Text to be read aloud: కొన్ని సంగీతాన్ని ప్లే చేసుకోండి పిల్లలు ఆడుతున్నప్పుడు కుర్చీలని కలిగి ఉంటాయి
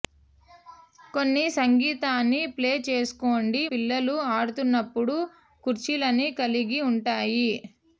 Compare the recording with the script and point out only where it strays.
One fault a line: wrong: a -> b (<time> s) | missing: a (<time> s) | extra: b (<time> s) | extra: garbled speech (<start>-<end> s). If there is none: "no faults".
no faults